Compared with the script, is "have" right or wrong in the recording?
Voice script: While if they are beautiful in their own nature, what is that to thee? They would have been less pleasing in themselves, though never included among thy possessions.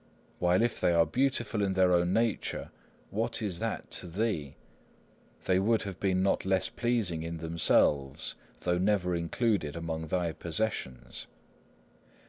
right